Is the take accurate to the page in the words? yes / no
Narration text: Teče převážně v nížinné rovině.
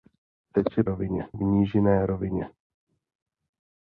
no